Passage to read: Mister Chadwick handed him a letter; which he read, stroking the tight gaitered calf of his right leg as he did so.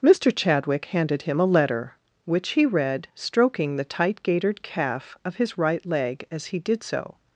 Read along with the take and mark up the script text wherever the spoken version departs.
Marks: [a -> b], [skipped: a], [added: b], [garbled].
Mister Chadwick handed him a letter; which he read, stroking the tight gaitered calf of his right leg as he did so.